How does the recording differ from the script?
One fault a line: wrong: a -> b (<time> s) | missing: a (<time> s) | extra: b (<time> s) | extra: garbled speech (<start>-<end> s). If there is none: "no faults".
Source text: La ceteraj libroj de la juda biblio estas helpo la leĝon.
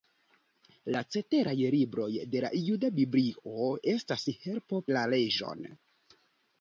no faults